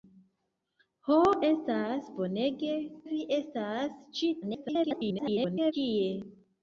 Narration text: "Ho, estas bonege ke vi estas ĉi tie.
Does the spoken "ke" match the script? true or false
false